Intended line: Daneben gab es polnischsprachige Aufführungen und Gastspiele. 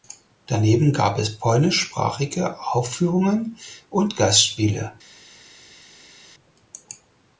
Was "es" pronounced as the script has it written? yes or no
yes